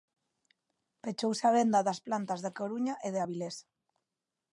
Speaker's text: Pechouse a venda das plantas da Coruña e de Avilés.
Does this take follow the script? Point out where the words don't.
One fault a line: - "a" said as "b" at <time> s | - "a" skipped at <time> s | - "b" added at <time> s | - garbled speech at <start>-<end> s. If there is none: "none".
none